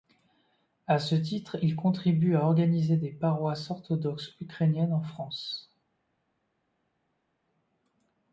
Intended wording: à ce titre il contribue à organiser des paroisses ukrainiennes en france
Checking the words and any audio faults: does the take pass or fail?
fail